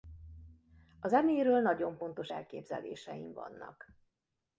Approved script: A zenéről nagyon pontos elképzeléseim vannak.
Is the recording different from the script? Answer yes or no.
no